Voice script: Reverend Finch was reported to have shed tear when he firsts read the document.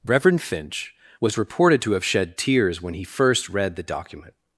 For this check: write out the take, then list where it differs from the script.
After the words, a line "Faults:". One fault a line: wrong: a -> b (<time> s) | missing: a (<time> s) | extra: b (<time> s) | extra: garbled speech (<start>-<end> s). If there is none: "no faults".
Reverend Finch was reported to have shed tears when he first read the document.
Faults:
wrong: tear -> tears (2.4 s)
wrong: firsts -> first (3.0 s)